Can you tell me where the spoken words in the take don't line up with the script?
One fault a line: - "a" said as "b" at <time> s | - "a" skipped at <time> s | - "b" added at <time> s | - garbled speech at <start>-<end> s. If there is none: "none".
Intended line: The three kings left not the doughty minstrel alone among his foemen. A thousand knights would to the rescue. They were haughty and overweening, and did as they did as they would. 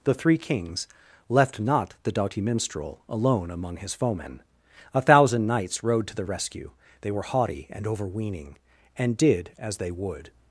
- "would" said as "rode" at 5.8 s
- "did as they" skipped at 9.9 s